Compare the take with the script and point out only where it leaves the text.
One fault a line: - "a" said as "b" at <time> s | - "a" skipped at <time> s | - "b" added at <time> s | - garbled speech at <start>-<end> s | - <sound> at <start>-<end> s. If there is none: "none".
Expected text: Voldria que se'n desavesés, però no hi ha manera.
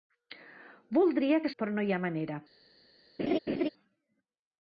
- "se'n desavesés" skipped at 1.5 s
- laugh at 3.2-3.7 s